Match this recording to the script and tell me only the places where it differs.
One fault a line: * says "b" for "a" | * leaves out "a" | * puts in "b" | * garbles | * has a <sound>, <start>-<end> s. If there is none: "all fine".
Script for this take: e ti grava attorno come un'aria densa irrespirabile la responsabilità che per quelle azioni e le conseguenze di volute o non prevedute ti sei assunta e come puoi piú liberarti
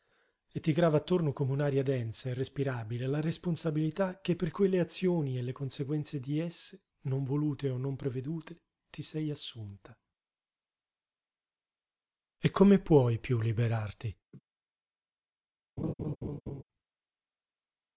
* puts in "esse non"
* has a laugh, 14.3-14.4 s
* has a laugh, 15.8-16.6 s